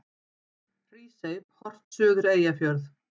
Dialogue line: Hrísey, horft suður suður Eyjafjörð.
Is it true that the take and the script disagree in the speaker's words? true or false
true